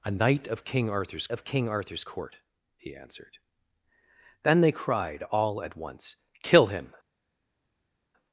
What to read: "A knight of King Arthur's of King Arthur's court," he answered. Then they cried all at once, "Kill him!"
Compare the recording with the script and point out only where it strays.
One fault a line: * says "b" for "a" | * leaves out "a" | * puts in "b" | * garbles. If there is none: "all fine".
all fine